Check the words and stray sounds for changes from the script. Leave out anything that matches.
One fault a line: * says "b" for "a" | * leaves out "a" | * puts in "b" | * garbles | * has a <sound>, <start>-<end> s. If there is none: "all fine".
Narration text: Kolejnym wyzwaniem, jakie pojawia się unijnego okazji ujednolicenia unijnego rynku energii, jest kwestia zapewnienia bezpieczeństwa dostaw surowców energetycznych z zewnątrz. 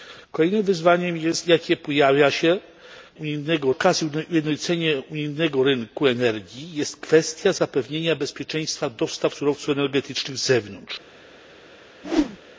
* has a whoosh, 12.0-12.4 s